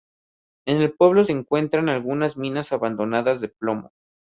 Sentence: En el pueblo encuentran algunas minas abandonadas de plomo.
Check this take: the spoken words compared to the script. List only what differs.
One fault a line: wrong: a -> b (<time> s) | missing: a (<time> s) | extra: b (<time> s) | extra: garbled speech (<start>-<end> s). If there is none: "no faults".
no faults